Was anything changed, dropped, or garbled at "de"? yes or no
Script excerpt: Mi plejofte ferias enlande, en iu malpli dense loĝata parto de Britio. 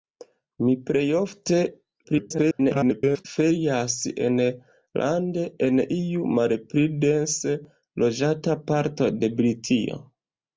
no